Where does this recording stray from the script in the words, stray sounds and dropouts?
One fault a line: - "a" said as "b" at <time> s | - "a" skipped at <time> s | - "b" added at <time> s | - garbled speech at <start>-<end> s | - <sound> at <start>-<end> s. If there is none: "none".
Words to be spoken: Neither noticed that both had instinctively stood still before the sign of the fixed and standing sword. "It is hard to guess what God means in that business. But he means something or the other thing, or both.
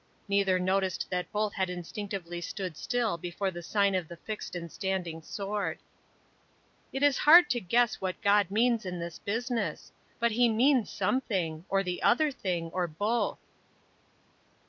- "that" said as "this" at 9.0 s